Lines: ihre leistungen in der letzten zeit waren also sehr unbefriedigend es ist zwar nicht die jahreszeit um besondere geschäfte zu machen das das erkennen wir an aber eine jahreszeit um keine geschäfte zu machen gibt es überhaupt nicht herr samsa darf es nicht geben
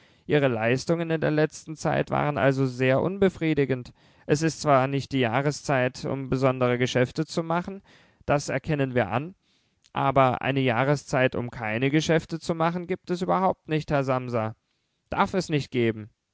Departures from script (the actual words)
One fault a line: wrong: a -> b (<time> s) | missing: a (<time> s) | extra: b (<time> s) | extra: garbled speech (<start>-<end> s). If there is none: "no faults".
missing: das (8.5 s)